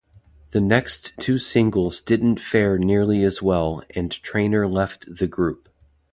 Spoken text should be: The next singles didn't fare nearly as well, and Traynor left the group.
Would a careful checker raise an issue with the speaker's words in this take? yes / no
yes